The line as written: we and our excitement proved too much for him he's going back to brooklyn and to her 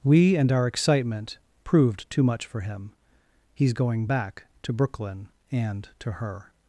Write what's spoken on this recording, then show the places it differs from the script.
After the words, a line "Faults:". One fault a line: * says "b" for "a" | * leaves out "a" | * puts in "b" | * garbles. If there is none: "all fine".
we and our excitement proved too much for him he's going back to brooklyn and to her
Faults:
all fine